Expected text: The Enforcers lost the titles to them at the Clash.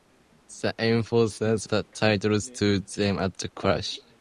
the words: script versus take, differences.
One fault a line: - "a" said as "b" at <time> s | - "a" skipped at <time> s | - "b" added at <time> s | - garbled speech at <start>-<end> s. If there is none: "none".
- "lost" skipped at 1.7 s